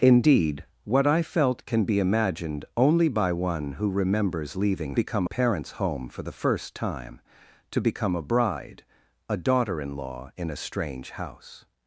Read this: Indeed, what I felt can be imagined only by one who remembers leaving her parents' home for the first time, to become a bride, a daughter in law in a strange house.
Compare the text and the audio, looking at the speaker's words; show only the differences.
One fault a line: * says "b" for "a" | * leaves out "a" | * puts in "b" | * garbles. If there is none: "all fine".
* says "become" for "her"